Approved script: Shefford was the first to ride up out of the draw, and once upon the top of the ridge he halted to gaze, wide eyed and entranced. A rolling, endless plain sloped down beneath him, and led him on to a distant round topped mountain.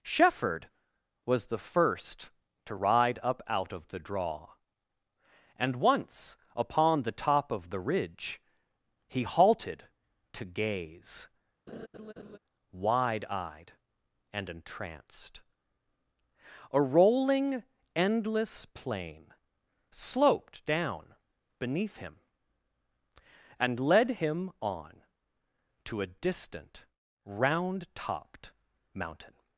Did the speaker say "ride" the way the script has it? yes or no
yes